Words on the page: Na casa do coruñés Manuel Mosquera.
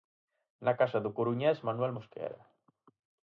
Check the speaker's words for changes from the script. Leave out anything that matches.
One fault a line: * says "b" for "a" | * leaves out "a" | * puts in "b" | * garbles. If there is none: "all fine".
all fine